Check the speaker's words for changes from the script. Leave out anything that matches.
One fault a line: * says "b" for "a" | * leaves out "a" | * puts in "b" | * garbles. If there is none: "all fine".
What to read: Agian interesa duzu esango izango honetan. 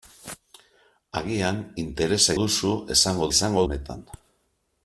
all fine